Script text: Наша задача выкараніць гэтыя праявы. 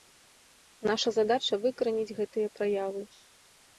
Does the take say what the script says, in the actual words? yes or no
yes